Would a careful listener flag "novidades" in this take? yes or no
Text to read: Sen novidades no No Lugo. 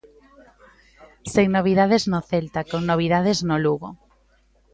no